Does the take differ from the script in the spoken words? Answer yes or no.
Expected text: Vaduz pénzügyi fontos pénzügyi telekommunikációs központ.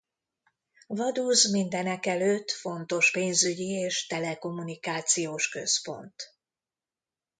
yes